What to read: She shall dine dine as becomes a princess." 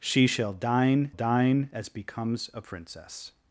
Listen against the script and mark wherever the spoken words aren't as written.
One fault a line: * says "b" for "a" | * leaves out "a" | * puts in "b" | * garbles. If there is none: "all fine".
all fine